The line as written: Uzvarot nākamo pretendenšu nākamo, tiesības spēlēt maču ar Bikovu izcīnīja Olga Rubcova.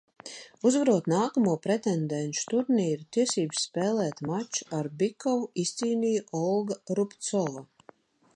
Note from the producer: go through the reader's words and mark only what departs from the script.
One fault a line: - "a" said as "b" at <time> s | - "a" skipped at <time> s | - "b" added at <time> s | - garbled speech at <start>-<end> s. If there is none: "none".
- "nākamo" said as "turnīru" at 2.5 s